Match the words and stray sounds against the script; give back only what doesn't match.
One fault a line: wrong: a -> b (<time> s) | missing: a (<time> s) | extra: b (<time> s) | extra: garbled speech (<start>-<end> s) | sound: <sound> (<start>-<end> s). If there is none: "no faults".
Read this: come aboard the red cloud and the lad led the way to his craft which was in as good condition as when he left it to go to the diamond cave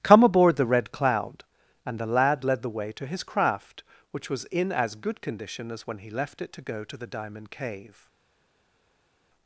no faults